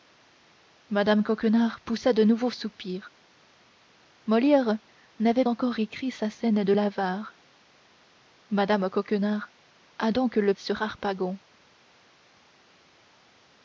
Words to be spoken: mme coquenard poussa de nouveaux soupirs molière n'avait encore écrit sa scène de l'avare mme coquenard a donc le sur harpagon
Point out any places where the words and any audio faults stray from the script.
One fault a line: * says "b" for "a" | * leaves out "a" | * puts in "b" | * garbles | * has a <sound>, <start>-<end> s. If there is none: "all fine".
all fine